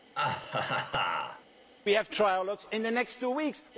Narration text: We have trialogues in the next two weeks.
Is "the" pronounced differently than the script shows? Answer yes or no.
no